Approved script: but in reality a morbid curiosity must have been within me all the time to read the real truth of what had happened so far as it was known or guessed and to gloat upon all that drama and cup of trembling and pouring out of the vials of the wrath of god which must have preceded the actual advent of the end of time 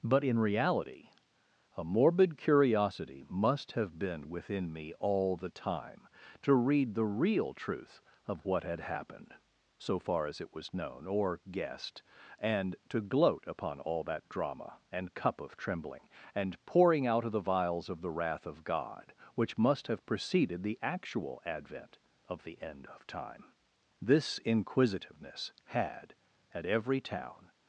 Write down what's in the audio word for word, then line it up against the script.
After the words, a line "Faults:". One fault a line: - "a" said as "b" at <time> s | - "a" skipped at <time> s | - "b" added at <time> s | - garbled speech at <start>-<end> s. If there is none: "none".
but in reality a morbid curiosity must have been within me all the time to read the real truth of what had happened so far as it was known or guessed and to gloat upon all that drama and cup of trembling and pouring out of the vials of the wrath of god which must have preceded the actual advent of the end of time this inquisitiveness had at every town
Faults:
- "this inquisitiveness had at every town" added at 24.0 s